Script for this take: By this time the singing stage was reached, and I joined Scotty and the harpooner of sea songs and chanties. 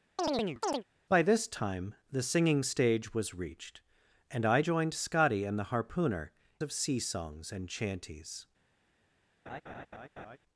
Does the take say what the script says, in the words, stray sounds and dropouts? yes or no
no